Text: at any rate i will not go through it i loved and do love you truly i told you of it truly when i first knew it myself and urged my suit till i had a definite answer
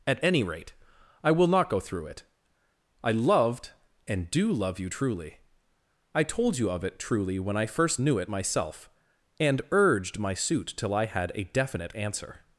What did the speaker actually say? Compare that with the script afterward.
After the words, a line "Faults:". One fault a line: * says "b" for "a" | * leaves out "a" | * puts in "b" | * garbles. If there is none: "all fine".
at any rate i will not go through it i loved and do love you truly i told you of it truly when i first knew it myself and urged my suit till i had a definite answer
Faults:
all fine